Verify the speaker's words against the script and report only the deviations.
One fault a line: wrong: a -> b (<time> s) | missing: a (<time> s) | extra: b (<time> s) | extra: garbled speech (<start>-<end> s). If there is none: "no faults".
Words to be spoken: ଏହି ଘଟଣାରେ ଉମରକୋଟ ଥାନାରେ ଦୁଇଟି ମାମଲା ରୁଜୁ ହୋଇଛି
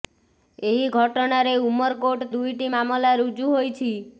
missing: ଥାନାରେ (2.3 s)